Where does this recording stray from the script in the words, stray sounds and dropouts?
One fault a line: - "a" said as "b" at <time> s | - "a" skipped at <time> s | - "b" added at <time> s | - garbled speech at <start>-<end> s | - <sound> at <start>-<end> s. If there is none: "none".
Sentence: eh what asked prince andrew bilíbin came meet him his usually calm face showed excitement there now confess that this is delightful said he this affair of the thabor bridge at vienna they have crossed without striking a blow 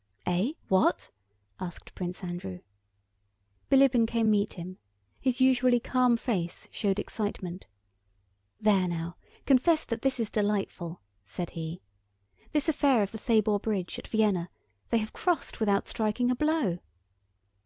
none